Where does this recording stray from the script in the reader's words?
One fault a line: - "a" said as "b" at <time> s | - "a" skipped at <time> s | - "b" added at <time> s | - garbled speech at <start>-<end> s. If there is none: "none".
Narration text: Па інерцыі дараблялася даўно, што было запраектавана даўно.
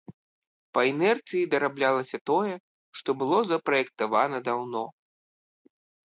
- "даўно" said as "тое" at 2.3 s